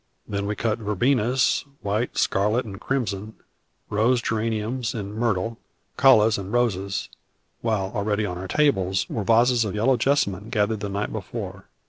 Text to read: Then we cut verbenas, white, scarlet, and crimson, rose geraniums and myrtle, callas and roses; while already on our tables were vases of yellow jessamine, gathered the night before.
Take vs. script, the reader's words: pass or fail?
pass